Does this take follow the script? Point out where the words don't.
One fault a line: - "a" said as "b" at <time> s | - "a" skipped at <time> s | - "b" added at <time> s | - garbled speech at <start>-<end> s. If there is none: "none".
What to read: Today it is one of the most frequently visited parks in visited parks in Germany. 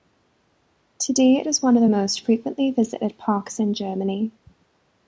- "visited parks in" skipped at 3.7 s